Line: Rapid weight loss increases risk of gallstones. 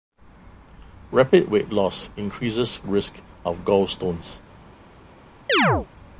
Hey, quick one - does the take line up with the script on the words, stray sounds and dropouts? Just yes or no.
no